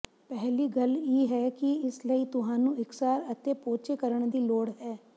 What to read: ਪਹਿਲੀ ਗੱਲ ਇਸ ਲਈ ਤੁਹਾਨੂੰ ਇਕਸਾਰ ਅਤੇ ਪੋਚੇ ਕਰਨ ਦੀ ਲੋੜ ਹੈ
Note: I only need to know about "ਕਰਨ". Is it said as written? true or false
true